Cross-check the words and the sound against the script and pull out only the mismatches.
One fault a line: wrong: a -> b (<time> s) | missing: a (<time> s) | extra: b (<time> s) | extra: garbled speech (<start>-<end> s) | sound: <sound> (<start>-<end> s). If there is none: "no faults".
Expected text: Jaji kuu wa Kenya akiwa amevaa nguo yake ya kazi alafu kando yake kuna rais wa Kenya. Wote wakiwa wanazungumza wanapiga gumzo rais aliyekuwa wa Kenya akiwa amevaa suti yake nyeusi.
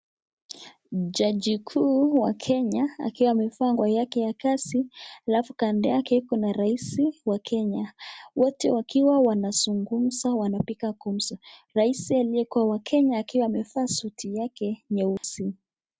sound: dropout (15.2-15.2 s)